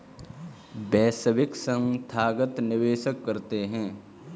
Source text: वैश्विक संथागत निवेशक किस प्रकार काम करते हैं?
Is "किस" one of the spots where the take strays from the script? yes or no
yes